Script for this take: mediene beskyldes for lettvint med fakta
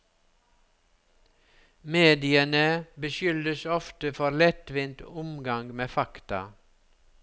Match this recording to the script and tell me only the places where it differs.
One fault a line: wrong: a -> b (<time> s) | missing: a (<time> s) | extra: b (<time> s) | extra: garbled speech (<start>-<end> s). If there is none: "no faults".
extra: ofte (3.6 s)
extra: omgang (5.0 s)